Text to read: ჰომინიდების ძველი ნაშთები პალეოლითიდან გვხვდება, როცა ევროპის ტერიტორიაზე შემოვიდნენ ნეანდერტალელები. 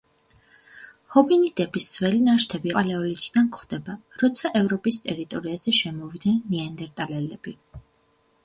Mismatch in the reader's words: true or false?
false